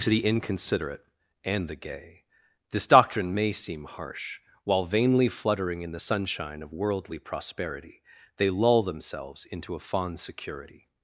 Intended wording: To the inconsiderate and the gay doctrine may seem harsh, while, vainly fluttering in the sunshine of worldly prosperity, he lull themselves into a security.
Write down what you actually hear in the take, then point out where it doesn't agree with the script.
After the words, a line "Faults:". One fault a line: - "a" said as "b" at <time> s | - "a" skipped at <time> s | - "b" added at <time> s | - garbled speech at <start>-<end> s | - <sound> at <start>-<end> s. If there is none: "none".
To the inconsiderate and the gay this doctrine may seem harsh, while, vainly fluttering in the sunshine of worldly prosperity, they lull themselves into a fond security.
Faults:
- "this" added at 2.7 s
- "he" said as "they" at 8.3 s
- "fond" added at 9.8 s